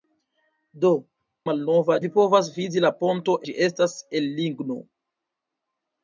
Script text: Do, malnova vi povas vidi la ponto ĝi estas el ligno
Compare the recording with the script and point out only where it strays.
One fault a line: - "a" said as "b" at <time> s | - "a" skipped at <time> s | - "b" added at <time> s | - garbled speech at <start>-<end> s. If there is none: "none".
none